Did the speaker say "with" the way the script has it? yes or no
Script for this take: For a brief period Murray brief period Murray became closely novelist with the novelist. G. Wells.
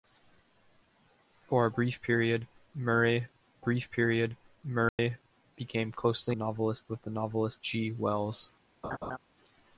yes